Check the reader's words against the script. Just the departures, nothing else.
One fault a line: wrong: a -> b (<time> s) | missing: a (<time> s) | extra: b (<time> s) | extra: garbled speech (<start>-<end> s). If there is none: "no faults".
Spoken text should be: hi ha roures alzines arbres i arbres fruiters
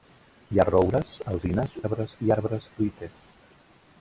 no faults